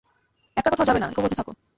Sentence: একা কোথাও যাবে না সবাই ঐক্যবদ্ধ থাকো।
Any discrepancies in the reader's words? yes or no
yes